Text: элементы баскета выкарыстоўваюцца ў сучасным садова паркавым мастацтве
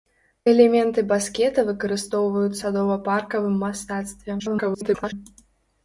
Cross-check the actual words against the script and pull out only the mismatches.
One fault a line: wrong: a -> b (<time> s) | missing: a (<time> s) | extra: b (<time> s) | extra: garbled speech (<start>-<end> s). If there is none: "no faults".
missing: ў сучасным (2.6 s)
extra: garbled speech (4.4-5.1 s)